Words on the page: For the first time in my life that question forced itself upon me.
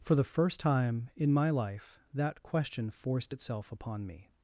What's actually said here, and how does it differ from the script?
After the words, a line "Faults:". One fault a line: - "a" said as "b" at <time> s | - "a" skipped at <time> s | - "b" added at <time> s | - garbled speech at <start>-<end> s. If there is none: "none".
For the first time in my life that question forced itself upon me.
Faults:
none